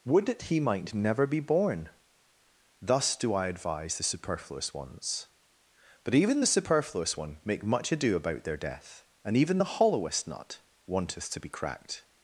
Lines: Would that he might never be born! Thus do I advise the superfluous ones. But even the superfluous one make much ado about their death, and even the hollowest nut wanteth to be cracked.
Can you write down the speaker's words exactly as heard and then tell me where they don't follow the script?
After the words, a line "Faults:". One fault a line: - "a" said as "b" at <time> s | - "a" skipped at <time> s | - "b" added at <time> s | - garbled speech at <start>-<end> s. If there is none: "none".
Would that he might never be born! Thus do I advise the superfluous ones. But even the superfluous one make much ado about their death, and even the hollowest nut wanteth to be cracked.
Faults:
none